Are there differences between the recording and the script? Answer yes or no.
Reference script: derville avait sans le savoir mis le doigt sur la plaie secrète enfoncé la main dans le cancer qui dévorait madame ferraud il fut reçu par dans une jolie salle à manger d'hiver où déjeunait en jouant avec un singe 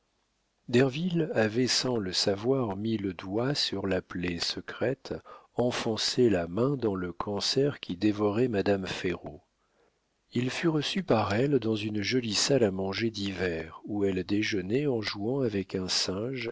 yes